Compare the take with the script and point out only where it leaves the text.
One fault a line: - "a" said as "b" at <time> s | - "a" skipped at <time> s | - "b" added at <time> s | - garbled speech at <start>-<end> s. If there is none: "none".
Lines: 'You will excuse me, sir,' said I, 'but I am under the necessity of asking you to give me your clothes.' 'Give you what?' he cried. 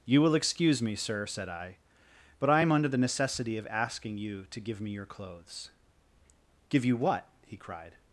none